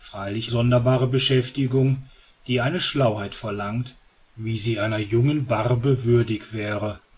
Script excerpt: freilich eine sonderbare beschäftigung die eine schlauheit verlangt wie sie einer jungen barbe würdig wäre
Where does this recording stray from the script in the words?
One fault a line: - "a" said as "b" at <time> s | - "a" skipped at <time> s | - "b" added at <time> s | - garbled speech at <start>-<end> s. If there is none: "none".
- "eine" skipped at 0.5 s